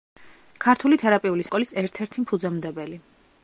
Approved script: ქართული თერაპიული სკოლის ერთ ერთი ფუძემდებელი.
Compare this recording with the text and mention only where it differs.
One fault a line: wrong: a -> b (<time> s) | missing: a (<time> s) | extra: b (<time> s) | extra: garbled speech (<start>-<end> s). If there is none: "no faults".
no faults